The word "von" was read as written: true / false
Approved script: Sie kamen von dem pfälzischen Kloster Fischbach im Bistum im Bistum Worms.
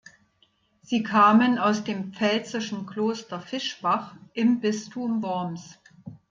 false